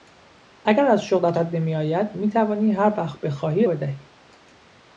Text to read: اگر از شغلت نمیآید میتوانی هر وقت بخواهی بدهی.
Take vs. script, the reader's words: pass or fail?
pass